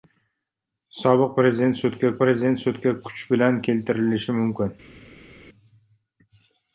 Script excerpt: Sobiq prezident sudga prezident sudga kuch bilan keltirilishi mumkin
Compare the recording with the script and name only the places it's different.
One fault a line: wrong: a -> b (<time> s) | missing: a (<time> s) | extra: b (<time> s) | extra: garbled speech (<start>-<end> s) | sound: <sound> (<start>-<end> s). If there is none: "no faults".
no faults